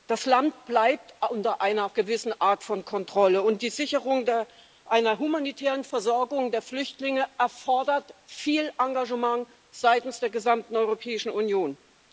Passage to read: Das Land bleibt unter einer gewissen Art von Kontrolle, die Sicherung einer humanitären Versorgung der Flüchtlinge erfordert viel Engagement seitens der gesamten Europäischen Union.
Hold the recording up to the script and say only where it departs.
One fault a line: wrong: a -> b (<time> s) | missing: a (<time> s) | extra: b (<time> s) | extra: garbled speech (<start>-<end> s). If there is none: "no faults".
extra: und (3.4 s)